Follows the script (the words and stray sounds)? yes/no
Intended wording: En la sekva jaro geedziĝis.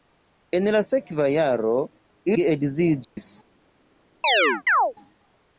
no